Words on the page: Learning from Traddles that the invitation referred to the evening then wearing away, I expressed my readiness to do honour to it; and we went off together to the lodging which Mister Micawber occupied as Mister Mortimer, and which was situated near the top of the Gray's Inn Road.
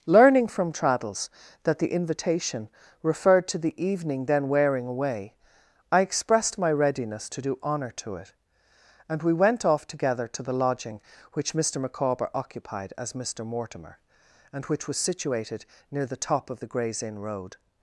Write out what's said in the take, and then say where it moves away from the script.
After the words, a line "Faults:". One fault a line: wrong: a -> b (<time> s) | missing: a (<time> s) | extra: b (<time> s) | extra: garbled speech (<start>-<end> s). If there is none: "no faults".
Learning from Traddles that the invitation referred to the evening then wearing away, I expressed my readiness to do honour to it; and we went off together to the lodging which Mister Micawber occupied as Mister Mortimer, and which was situated near the top of the Gray's Inn Road.
Faults:
no faults